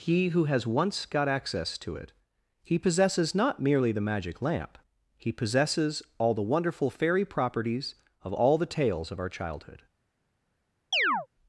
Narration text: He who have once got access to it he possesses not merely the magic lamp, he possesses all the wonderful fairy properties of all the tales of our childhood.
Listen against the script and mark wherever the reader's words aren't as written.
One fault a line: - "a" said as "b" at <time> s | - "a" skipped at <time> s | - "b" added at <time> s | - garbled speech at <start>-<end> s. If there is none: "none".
- "have" said as "has" at 0.5 s